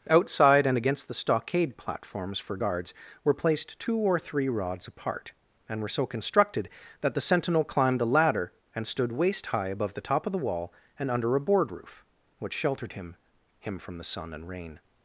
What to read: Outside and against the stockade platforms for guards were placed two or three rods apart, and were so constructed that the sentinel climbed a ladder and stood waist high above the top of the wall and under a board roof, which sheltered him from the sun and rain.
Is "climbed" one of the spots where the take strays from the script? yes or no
no